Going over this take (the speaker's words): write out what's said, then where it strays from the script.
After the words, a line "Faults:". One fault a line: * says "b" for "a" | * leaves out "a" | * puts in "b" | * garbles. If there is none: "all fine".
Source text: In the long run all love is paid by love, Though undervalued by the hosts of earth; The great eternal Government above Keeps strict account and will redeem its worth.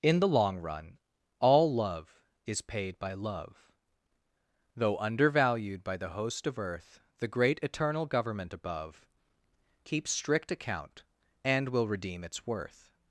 In the long run all love is paid by love, Though undervalued by the host of earth; The great eternal Government above Keeps strict account and will redeem its worth.
Faults:
* says "host" for "hosts"